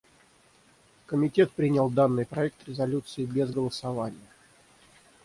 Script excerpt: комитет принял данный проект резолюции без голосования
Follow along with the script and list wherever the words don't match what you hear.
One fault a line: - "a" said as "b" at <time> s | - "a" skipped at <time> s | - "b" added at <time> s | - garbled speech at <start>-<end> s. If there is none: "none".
none